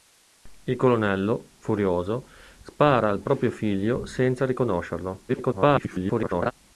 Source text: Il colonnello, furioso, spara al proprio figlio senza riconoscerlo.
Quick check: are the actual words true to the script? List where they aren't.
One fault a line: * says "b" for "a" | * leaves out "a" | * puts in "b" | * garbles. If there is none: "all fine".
* garbles